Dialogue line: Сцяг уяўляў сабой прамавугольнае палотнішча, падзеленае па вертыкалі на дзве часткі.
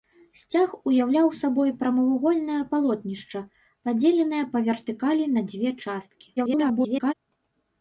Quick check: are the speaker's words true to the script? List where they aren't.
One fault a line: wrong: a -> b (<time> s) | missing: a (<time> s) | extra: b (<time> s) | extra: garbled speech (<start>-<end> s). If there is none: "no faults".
extra: garbled speech (6.4-7.1 s)